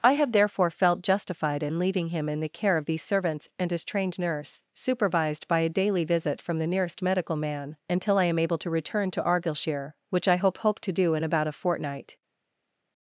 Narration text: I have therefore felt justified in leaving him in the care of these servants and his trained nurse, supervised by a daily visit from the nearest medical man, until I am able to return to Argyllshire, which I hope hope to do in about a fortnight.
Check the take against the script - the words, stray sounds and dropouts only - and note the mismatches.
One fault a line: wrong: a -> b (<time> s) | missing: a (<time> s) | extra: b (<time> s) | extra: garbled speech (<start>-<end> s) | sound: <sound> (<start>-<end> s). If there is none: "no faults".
no faults